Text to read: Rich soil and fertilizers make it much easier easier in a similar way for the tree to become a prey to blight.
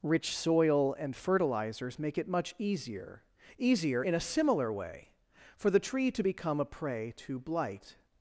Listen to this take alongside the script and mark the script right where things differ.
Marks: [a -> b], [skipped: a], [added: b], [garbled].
Rich soil and fertilizers make it much easier easier in a similar way for the tree to become a prey to blight.